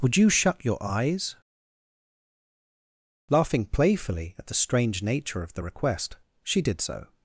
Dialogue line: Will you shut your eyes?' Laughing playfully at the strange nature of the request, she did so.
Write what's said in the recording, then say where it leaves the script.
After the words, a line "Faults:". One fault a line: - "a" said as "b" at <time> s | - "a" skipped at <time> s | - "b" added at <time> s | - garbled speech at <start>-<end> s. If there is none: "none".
Would you shut your eyes?' Laughing playfully at the strange nature of the request, she did so.
Faults:
- "Will" said as "Would" at 0.0 s